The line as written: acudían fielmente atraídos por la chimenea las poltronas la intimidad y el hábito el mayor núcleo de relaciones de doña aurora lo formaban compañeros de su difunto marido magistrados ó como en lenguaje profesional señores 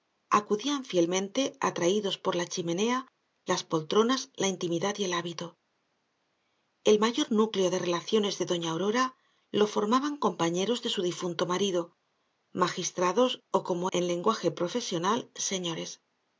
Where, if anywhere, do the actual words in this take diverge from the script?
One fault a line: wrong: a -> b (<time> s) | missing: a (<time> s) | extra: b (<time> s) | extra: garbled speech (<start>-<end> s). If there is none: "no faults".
no faults